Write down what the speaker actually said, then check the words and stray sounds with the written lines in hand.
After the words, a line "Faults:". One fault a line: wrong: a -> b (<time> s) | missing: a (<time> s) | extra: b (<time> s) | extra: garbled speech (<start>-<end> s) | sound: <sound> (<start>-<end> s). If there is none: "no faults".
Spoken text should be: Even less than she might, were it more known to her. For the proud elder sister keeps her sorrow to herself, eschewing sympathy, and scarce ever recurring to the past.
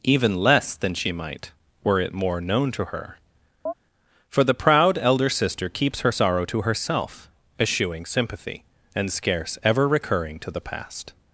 Even less than she might, were it more known to her. For the proud elder sister keeps her sorrow to herself, eschewing sympathy, and scarce ever recurring to the past.
Faults:
sound: chirp (3.7-3.7 s)